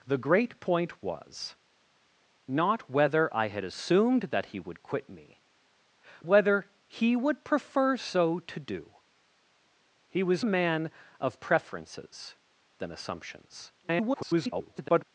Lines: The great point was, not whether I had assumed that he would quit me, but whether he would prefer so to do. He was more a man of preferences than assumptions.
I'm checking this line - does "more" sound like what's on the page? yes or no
no